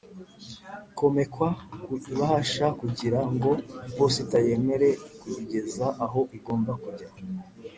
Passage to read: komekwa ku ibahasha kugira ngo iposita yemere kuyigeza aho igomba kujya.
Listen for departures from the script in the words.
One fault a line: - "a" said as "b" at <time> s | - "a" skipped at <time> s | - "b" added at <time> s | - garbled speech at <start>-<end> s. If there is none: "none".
none